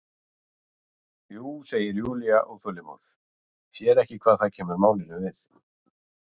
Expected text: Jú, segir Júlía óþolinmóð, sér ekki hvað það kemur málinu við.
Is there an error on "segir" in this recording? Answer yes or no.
no